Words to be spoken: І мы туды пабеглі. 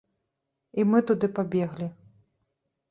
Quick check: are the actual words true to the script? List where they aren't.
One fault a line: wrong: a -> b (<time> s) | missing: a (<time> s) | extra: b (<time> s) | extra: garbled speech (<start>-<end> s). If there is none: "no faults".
no faults